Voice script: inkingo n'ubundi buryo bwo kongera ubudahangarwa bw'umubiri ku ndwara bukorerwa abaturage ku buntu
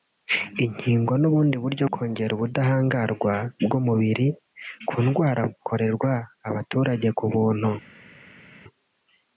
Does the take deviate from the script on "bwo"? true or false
true